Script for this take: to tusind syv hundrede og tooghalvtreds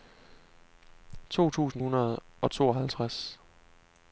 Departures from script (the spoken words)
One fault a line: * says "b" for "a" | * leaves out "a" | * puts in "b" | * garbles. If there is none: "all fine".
* leaves out "syv"